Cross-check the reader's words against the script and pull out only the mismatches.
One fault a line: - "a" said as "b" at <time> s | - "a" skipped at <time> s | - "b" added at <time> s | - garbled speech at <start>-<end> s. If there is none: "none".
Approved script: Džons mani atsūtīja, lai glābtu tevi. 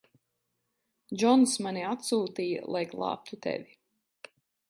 none